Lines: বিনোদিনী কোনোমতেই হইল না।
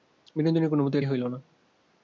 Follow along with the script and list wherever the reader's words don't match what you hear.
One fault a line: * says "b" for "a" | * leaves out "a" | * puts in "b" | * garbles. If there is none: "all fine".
all fine